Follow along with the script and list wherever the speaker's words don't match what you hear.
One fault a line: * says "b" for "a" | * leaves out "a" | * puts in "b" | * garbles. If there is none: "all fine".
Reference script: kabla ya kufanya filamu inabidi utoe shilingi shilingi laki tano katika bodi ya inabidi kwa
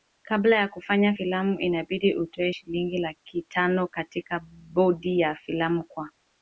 * leaves out "shilingi"
* says "filamu" for "inabidi"